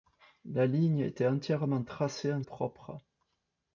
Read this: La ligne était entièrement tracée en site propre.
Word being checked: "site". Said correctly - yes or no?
no